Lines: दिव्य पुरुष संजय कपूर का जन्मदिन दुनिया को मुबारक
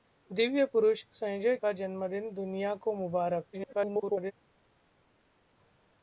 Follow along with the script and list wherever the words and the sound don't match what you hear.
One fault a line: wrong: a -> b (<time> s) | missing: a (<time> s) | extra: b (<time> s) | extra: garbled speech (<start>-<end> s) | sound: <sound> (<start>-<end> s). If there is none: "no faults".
missing: कपूर (1.6 s)
extra: garbled speech (3.5-4.3 s)